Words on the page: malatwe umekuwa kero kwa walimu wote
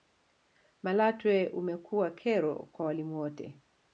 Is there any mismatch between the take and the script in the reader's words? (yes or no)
no